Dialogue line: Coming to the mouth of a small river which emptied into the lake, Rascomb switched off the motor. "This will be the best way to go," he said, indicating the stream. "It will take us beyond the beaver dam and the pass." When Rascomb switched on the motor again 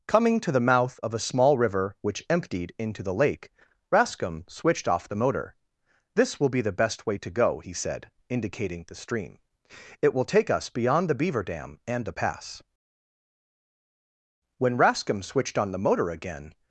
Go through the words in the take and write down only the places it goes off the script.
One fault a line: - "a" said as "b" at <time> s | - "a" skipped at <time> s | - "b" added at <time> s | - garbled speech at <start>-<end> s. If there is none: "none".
none